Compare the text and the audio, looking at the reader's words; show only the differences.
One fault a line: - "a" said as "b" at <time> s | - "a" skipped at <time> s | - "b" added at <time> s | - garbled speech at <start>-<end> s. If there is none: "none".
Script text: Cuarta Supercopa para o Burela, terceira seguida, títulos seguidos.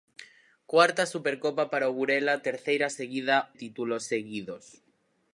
none